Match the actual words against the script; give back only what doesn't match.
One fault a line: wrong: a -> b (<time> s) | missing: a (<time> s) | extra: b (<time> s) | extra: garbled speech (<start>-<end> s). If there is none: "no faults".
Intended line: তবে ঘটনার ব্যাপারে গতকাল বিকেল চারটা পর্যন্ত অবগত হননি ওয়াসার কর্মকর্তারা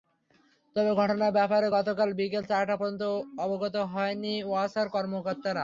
no faults